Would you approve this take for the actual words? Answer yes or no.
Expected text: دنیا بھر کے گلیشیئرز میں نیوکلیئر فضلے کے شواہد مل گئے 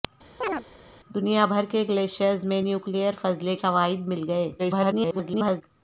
no